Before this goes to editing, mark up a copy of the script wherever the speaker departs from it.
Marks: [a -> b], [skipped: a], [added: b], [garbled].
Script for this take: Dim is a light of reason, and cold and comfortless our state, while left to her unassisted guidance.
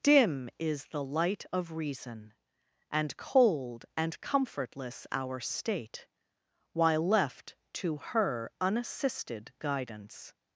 Dim is [a -> the] light of reason, and cold and comfortless our state, while left to her unassisted guidance.